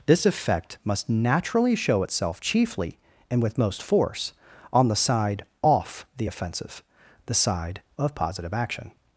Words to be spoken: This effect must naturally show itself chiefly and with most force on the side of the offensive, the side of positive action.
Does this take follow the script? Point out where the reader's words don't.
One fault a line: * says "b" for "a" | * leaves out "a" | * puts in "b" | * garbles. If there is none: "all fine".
* says "off" for "of"